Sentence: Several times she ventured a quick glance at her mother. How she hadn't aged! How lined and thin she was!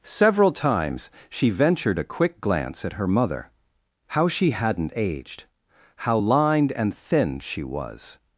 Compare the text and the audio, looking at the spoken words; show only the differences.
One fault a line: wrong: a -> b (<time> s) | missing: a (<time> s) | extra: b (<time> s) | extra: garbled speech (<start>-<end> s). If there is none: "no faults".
no faults